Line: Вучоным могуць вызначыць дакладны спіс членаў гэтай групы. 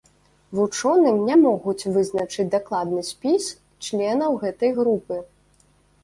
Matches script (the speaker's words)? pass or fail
fail